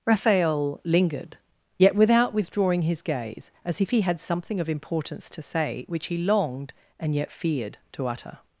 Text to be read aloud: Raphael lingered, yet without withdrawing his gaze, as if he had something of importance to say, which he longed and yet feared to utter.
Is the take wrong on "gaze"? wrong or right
right